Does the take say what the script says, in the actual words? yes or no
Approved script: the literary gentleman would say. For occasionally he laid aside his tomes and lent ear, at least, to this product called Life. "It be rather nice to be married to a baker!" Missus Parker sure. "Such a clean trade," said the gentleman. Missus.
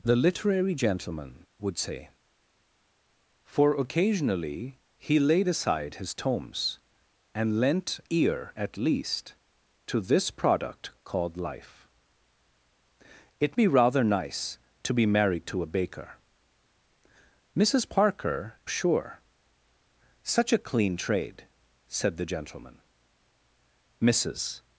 yes